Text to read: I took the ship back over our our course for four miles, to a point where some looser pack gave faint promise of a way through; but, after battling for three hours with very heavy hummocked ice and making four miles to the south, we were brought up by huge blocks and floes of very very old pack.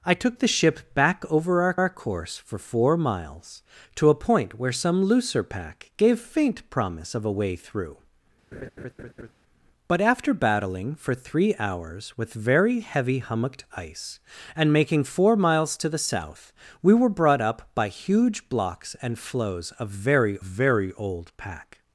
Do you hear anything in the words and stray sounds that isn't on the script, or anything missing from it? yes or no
yes